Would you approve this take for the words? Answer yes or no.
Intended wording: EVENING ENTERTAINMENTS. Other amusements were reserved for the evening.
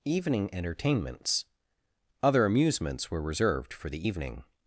yes